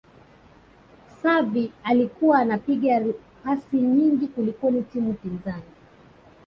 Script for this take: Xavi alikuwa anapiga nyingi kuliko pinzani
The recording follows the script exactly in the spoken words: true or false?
false